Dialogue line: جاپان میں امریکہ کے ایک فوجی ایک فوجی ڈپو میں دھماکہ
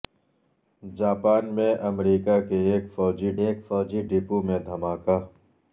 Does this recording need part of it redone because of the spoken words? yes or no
no